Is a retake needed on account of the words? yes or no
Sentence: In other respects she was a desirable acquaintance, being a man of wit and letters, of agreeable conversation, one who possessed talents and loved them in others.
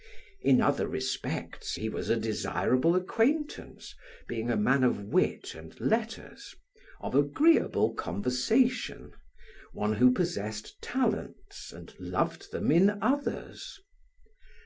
yes